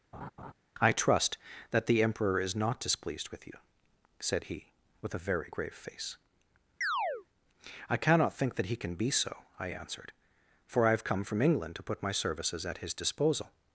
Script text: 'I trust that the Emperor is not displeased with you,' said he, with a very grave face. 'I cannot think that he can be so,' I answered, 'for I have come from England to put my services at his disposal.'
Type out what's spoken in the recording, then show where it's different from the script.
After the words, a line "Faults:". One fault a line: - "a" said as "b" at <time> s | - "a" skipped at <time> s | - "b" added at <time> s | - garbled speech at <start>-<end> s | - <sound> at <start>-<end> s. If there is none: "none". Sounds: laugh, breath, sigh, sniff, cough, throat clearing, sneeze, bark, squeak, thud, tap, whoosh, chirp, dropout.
'I trust that the Emperor is not displeased with you,' said he, with a very grave face. 'I cannot think that he can be so,' I answered, 'for I have come from England to put my services at his disposal.'
Faults:
- laugh at 0.1-0.5 s
- chirp at 6.8-7.3 s